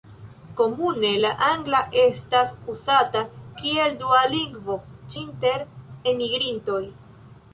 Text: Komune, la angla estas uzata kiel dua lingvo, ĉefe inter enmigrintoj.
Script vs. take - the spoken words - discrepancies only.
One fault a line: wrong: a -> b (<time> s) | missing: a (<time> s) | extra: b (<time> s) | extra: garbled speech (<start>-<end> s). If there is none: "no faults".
missing: ĉefe (4.8 s)